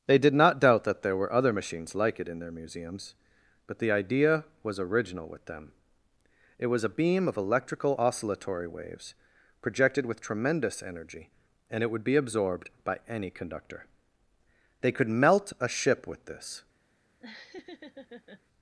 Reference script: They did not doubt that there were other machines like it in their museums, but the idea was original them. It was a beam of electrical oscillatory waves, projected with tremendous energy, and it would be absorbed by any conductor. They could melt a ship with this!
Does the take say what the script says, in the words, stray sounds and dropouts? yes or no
no